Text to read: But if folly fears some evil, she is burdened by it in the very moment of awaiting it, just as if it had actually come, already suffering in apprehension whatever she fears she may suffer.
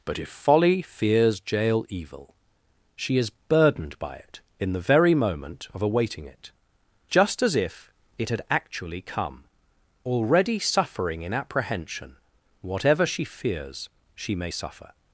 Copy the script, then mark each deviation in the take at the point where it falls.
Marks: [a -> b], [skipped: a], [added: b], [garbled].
But if folly fears [some -> jail] evil, she is burdened by it in the very moment of awaiting it, just as if it had actually come, already suffering in apprehension whatever she fears she may suffer.